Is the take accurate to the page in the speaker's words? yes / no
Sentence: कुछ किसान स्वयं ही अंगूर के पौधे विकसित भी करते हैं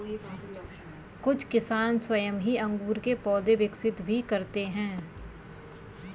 yes